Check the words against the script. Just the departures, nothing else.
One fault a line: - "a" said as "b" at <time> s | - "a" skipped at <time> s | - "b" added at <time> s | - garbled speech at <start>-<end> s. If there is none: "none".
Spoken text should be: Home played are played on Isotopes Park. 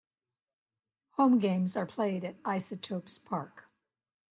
- "played" said as "games" at 1.4 s
- "on" said as "at" at 2.2 s